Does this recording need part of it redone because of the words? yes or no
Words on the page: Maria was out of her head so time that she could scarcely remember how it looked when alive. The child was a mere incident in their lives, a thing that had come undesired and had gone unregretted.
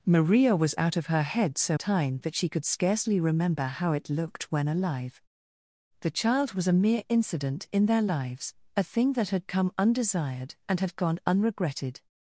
no